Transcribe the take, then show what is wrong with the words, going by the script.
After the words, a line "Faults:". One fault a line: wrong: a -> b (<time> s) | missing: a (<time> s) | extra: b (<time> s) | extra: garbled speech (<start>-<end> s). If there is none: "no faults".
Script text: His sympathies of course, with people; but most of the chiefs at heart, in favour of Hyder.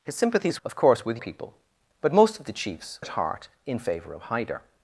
His sympathies of course, with people; but most of the chiefs at heart, in favour of Hyder.
Faults:
no faults